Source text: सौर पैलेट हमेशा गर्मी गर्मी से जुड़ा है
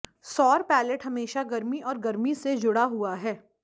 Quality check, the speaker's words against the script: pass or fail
fail